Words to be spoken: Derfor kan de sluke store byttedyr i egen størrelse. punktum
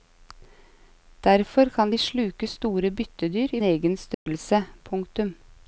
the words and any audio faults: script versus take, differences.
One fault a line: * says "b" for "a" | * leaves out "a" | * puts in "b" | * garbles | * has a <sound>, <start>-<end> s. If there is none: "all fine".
* has a dropout, 4.1-4.3 s